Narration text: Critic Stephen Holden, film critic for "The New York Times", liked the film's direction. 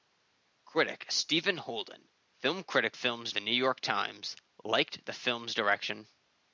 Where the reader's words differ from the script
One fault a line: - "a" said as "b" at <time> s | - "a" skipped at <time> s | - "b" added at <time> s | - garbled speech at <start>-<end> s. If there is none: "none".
- "for" said as "film's" at 2.9 s